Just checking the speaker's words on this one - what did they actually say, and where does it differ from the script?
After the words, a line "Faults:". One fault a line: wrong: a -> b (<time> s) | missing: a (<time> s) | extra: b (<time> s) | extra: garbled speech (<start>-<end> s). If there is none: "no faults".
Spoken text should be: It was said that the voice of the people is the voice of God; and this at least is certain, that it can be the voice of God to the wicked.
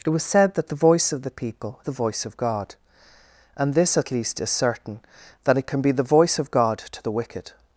It was said that the voice of the people the voice of God; and this at least is certain, that it can be the voice of God to the wicked.
Faults:
missing: is (1.8 s)